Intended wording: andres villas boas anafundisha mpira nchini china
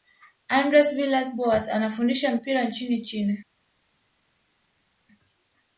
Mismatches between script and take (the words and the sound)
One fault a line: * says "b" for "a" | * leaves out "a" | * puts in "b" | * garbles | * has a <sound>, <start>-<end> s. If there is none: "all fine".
all fine